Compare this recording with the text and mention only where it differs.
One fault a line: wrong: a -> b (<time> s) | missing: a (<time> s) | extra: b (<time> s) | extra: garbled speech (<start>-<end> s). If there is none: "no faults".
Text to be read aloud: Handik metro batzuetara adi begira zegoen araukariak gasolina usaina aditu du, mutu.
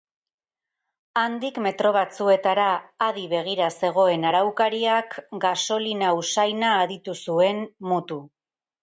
wrong: du -> zuen (7.3 s)